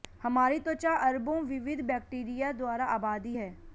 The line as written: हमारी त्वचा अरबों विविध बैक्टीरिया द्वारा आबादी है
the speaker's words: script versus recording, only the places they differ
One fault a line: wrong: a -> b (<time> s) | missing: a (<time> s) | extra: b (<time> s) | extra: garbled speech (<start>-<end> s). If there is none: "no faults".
no faults